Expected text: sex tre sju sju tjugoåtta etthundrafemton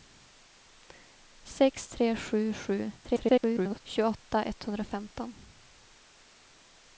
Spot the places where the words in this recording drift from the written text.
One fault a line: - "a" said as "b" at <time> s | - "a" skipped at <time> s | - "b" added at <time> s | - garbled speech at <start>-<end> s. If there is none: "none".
- garbled speech at 3.0-3.8 s